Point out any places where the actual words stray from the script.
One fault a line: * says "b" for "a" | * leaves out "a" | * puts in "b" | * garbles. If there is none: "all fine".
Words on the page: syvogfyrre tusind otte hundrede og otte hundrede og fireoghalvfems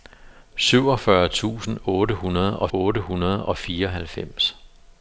all fine